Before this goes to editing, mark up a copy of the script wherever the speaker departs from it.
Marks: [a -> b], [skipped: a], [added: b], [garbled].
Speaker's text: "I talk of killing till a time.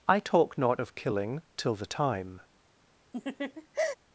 "I talk [added: not] of killing till [a -> the] time.